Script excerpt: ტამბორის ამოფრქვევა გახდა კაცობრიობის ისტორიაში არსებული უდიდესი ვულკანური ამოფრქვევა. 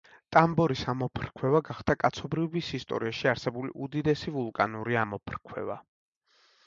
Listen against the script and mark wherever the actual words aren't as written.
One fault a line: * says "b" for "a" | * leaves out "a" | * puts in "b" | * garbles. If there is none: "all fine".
all fine